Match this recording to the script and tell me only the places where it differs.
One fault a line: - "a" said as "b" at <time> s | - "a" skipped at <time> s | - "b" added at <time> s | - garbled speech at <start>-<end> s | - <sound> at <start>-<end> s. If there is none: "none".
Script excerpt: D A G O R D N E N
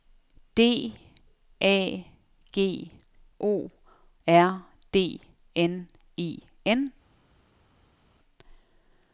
none